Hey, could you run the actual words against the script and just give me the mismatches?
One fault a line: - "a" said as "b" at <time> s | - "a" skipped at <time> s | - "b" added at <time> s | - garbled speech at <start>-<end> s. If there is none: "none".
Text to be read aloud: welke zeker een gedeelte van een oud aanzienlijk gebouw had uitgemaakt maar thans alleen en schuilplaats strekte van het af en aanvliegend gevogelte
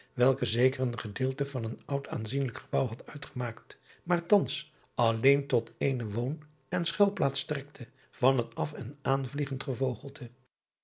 - "tot eene woon" added at 5.5 s